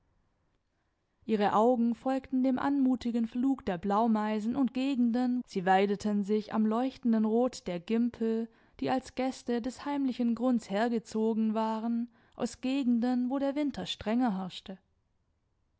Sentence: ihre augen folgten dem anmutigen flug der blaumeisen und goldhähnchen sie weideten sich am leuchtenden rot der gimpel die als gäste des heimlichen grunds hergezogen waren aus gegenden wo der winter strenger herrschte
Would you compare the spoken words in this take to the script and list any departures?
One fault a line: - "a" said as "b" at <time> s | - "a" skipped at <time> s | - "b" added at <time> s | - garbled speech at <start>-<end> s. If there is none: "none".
- "goldhähnchen" said as "gegenden" at 4.7 s